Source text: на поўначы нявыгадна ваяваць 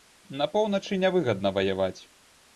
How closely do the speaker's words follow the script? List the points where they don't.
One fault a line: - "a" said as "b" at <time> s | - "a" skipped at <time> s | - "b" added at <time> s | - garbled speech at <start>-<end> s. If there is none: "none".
none